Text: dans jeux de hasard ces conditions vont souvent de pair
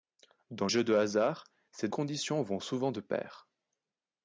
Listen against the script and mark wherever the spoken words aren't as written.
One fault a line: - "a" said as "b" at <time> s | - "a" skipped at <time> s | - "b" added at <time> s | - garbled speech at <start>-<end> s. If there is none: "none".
none